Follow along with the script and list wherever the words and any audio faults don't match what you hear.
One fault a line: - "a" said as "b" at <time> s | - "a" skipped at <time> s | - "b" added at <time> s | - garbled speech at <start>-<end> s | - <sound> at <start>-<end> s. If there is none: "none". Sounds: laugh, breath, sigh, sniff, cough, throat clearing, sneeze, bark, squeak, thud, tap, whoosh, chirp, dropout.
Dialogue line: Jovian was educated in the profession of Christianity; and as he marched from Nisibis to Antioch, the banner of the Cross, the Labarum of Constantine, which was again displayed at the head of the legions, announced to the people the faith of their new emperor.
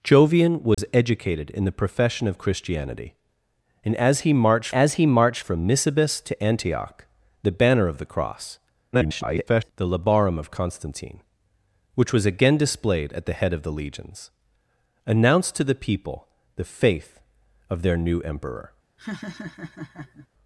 - dropout at 0.7-0.8 s
- "as he marched" added at 4.7 s
- garbled speech at 8.9-9.7 s
- laugh at 19.0-20.3 s